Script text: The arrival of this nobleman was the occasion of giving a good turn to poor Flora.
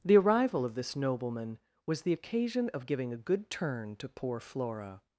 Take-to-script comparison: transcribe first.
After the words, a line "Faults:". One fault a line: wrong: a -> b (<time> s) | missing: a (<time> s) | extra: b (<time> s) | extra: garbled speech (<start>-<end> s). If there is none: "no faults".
The arrival of this nobleman was the occasion of giving a good turn to poor Flora.
Faults:
no faults